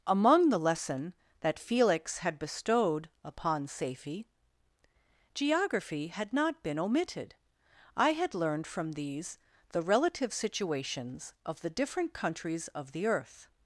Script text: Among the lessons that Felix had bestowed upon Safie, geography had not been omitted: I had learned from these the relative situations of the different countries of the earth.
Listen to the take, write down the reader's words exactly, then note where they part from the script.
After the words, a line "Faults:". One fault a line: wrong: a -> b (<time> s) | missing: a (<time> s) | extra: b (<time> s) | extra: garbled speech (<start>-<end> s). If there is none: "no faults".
Among the lesson that Felix had bestowed upon Safie, geography had not been omitted: I had learned from these the relative situations of the different countries of the earth.
Faults:
wrong: lessons -> lesson (0.6 s)